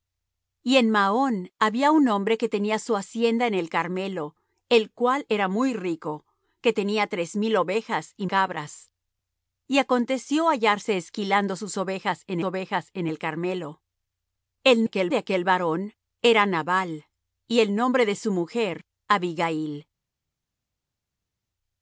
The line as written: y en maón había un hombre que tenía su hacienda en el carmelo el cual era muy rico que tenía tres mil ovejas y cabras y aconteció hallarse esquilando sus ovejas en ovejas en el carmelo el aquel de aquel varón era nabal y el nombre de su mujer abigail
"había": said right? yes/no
yes